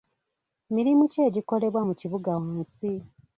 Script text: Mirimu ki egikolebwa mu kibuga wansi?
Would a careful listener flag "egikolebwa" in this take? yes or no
no